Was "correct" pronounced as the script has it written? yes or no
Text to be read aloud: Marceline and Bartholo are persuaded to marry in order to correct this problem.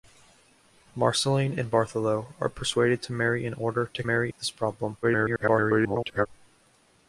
no